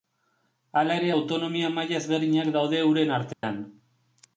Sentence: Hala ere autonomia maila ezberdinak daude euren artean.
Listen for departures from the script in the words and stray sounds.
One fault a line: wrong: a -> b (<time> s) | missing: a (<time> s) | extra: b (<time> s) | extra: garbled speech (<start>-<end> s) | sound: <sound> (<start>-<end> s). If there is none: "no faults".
sound: dropout (3.3-3.4 s)